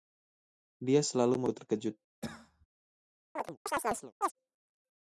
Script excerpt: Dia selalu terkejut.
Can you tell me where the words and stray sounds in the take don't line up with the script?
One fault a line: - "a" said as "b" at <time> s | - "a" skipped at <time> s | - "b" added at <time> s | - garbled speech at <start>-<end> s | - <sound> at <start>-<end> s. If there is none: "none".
- cough at 2.2-2.7 s
- chirp at 3.4-4.3 s